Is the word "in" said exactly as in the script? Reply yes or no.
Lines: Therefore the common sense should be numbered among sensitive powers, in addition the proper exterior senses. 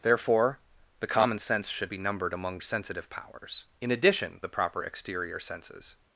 yes